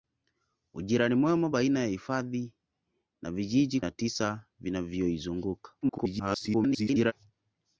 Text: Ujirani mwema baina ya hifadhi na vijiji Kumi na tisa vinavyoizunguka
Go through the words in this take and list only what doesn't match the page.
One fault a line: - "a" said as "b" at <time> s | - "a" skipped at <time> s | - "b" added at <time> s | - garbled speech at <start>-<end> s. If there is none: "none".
- "Kumi" skipped at 3.8 s
- garbled speech at 5.8-7.1 s